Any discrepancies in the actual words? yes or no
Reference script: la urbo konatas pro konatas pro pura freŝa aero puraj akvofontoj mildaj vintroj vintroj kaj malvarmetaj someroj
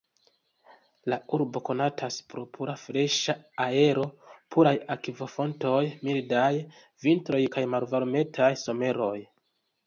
yes